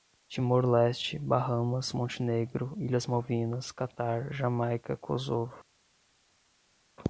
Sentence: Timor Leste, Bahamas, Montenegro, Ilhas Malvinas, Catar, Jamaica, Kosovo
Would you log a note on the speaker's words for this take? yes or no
no